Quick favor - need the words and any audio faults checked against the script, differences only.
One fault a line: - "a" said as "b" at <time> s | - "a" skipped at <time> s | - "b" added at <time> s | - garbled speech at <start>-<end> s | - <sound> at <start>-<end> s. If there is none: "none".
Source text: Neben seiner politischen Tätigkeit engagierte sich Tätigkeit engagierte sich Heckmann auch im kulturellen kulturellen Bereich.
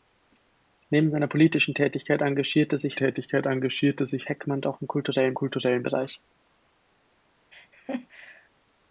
- laugh at 7.5-8.5 s